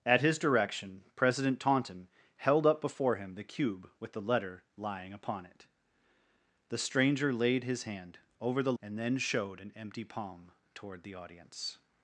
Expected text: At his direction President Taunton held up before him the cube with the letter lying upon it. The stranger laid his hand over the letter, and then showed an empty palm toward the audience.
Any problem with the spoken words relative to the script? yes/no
yes